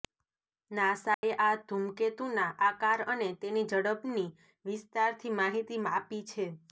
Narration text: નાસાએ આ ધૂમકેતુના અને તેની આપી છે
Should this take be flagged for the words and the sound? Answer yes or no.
yes